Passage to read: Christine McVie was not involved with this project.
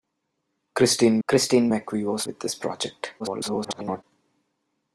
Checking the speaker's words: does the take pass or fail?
fail